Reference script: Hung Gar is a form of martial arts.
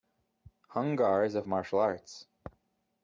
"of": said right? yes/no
no